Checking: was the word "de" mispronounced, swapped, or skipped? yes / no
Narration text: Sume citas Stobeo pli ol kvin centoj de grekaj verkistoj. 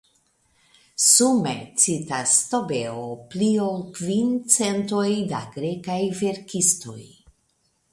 yes